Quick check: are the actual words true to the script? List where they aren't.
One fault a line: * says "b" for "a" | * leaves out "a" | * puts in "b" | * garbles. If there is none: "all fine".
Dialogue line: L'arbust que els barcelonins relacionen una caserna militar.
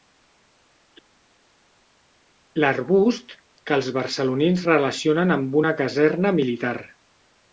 * puts in "amb"